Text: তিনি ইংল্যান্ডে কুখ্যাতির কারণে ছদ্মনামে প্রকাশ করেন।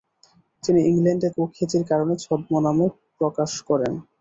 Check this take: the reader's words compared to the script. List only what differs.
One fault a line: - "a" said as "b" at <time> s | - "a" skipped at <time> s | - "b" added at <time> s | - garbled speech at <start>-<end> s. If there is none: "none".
none